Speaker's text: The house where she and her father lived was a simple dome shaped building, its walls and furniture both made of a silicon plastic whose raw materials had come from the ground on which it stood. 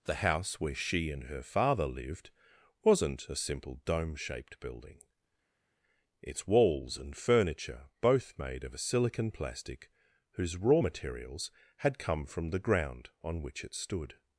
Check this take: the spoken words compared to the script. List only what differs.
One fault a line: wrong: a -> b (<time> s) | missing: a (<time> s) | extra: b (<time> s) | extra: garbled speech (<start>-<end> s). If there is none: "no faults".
wrong: was -> wasn't (2.8 s)